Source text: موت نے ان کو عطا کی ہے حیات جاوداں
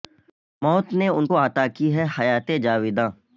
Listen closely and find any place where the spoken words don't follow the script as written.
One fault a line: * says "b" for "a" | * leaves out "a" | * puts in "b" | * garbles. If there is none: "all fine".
all fine